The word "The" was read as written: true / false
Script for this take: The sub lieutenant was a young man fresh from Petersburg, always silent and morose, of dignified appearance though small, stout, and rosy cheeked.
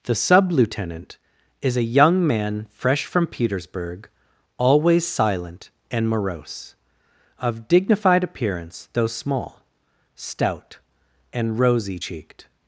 true